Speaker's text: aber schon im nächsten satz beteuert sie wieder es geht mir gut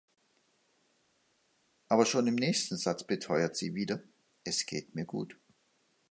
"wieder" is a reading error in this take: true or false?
false